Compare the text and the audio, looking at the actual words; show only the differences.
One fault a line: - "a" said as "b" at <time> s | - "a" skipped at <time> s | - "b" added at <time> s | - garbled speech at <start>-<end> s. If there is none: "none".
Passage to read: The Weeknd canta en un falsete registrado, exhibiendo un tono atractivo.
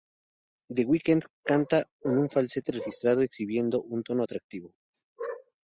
none